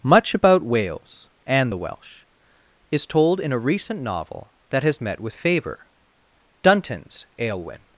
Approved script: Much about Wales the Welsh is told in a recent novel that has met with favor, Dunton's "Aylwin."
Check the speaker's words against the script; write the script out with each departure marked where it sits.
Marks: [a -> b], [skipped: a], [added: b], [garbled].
Much about Wales [added: and] the Welsh is told in a recent novel that has met with favor, Dunton's "Aylwin."